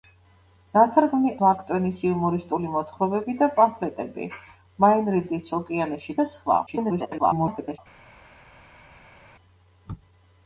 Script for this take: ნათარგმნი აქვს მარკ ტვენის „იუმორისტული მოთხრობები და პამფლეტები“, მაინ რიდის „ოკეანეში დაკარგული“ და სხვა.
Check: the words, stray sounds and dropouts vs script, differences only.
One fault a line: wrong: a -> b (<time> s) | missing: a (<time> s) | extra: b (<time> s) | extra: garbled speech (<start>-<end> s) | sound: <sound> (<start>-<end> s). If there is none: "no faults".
missing: აქვს (1.3 s)
missing: დაკარგული (6.2 s)
extra: garbled speech (6.7-7.8 s)